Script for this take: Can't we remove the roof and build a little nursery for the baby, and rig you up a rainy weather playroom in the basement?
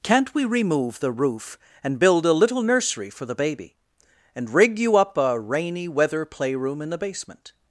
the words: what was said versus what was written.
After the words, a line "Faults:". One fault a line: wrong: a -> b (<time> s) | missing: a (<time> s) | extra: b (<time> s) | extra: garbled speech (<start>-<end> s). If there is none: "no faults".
Can't we remove the roof and build a little nursery for the baby, and rig you up a rainy weather playroom in the basement?
Faults:
no faults